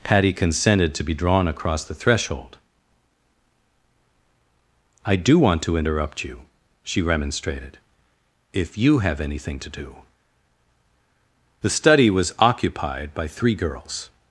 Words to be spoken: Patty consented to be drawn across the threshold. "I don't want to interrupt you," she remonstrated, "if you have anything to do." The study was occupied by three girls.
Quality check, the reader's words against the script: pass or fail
fail